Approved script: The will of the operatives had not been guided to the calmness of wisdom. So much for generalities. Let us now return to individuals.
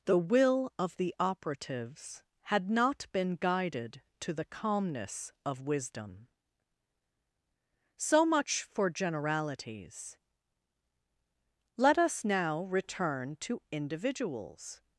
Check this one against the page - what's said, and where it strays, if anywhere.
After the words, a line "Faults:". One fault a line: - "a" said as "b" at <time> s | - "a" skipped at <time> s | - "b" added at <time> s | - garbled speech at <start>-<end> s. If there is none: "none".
The will of the operatives had not been guided to the calmness of wisdom. So much for generalities. Let us now return to individuals.
Faults:
none